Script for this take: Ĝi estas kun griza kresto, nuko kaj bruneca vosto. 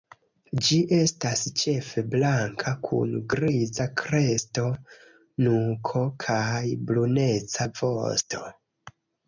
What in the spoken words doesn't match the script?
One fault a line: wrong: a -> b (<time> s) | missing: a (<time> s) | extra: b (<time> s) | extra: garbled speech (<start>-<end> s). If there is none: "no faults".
extra: ĉefe blanka (1.6 s)